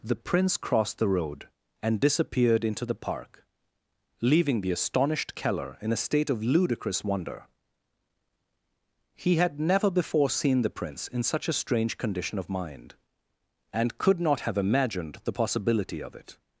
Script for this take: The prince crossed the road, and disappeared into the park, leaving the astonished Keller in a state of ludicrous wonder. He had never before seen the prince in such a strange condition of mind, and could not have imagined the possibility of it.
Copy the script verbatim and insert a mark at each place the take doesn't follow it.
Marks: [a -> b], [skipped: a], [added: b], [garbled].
The prince crossed the road, and disappeared into the park, leaving the astonished Keller in a state of ludicrous wonder. He had never before seen the prince in such a strange condition of mind, and could not have imagined the possibility of it.